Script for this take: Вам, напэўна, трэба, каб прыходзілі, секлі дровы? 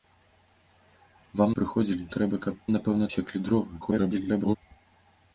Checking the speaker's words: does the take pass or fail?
fail